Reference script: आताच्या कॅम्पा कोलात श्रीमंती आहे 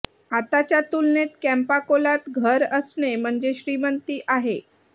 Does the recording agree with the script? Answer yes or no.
no